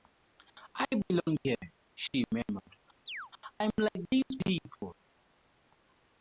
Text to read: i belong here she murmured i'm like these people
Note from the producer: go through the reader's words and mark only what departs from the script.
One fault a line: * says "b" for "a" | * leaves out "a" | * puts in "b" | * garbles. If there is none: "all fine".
all fine